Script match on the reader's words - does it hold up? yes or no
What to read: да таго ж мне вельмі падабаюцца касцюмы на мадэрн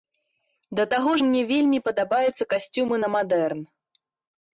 yes